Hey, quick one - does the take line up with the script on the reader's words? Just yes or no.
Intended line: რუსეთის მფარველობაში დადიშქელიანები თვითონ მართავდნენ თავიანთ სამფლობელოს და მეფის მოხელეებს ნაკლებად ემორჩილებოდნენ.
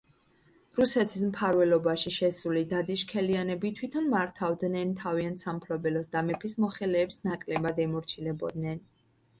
no